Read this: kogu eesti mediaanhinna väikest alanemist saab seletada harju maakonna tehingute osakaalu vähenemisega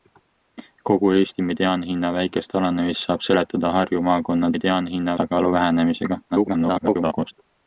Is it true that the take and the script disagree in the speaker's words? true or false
true